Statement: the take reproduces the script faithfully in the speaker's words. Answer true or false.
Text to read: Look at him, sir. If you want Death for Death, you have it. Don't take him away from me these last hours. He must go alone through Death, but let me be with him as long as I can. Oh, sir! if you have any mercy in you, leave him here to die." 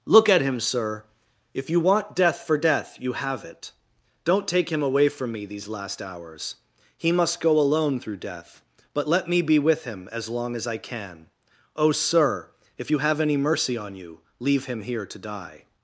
false